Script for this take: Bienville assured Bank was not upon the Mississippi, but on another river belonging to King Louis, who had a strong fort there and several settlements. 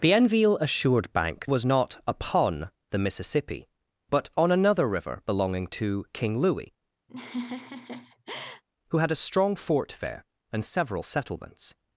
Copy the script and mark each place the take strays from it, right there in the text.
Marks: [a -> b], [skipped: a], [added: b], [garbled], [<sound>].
Bienville assured Bank was not upon the Mississippi, but on another river belonging to King Louis, [laugh] who had a strong fort there and several settlements.